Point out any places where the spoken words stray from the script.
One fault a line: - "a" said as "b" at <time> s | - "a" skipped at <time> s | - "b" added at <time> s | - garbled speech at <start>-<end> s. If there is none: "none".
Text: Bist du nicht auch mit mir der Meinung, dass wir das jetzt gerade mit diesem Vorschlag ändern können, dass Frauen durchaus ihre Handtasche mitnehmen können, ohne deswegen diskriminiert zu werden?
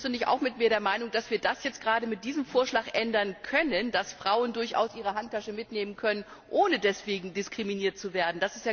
none